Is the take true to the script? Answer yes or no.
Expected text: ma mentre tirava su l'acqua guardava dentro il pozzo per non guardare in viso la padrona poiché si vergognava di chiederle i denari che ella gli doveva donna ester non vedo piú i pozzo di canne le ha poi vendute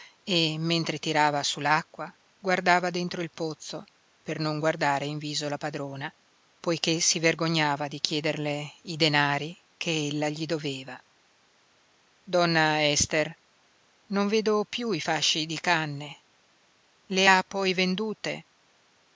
no